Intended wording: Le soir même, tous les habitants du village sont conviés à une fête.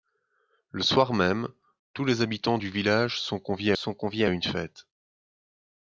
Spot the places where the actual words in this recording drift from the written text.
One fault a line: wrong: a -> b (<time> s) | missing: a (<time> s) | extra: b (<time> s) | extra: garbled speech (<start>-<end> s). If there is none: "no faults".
extra: sont conviés (3.8 s)